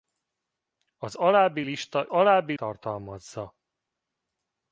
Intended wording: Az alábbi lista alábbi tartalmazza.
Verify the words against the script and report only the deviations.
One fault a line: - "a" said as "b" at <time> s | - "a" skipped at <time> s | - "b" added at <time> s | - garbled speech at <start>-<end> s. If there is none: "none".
none